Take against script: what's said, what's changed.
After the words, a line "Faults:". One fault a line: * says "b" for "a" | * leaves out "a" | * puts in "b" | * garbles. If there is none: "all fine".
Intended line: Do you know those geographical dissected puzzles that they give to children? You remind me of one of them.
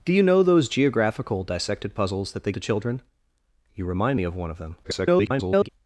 Do you know those geographical dissected puzzles that they to children? You remind me of one of them. [garbled]
Faults:
* leaves out "give"
* garbles